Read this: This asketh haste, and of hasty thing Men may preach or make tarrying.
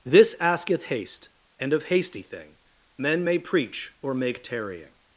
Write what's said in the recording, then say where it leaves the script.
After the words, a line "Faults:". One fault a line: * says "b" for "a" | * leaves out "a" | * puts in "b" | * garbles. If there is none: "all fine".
This asketh haste, and of hasty thing Men may preach or make tarrying.
Faults:
all fine